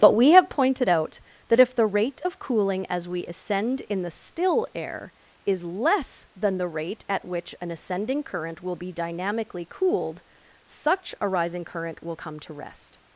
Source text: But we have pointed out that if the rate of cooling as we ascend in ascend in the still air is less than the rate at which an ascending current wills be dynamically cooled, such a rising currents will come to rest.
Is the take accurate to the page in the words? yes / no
no